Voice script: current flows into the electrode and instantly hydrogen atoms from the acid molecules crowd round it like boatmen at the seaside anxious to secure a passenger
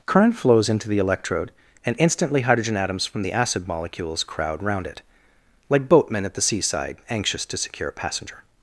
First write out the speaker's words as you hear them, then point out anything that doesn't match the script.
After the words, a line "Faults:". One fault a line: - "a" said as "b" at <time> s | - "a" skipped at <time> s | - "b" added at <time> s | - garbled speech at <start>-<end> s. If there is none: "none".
current flows into the electrode and instantly hydrogen atoms from the acid molecules crowd round it like boatmen at the seaside anxious to secure a passenger
Faults:
none